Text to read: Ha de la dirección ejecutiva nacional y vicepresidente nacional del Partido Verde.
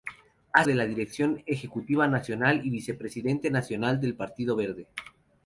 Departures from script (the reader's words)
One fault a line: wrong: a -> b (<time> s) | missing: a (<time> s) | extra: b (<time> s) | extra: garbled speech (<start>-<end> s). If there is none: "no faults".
no faults